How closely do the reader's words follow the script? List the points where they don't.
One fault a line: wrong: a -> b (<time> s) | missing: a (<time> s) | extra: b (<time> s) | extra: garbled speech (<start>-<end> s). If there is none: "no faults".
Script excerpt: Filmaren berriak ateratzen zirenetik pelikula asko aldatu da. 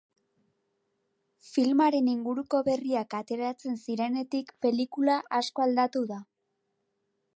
extra: inguruko (2.1 s)